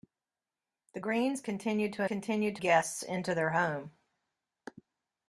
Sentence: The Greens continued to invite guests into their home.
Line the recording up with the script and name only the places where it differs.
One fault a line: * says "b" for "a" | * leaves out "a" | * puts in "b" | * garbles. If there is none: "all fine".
* says "continued" for "invite"